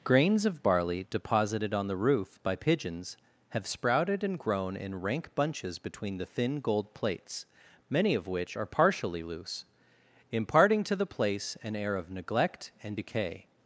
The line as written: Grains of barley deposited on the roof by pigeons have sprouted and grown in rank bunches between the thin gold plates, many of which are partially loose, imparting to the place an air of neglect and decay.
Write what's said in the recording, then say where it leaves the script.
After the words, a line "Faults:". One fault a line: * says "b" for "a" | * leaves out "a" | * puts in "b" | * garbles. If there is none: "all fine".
Grains of barley deposited on the roof by pigeons have sprouted and grown in rank bunches between the thin gold plates, many of which are partially loose, imparting to the place an air of neglect and decay.
Faults:
all fine